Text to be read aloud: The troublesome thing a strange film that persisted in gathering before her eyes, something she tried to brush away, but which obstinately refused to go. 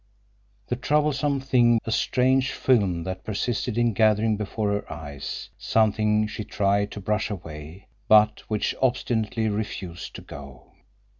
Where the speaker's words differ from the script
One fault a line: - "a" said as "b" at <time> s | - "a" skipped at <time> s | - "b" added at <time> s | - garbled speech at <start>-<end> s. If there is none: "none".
none